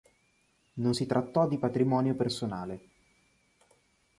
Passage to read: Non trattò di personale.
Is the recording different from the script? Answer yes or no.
yes